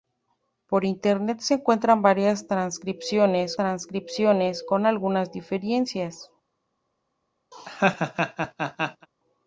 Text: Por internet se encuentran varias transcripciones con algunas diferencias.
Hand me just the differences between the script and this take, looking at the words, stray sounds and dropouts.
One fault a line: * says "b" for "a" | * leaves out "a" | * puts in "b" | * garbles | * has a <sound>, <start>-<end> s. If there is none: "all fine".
* puts in "transcripciones"
* has a laugh, 7.5-9.1 s